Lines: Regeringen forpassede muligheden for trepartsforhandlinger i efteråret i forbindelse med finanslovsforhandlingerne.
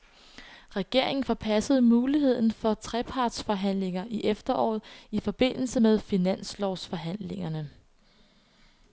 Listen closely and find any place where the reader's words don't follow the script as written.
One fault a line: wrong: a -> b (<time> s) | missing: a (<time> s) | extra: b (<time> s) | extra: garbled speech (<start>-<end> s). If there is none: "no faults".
no faults